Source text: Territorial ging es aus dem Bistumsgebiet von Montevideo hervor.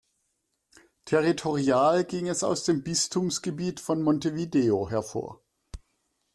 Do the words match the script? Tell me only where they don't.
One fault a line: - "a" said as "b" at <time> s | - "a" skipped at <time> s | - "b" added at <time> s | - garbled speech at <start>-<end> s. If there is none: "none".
none